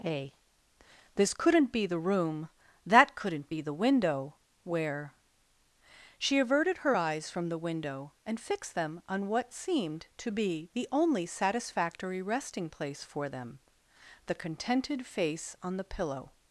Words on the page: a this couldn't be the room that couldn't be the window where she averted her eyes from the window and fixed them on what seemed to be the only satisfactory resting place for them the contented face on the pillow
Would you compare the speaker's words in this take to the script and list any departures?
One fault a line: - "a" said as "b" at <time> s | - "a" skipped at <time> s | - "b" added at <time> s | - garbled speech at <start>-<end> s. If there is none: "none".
none